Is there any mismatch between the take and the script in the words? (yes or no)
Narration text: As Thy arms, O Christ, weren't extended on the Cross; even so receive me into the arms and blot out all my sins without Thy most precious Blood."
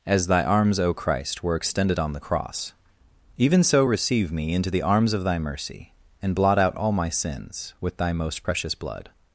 yes